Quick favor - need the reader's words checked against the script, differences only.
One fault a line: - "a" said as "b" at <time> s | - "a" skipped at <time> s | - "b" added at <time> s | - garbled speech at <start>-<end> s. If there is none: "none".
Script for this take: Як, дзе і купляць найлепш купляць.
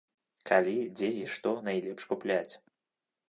- "Як" said as "Калі" at 0.5 s
- "купляць" said as "што" at 1.4 s